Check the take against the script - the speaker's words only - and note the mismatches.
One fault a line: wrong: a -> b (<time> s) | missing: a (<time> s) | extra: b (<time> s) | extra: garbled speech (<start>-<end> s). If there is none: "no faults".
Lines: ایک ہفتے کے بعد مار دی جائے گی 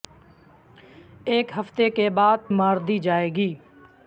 no faults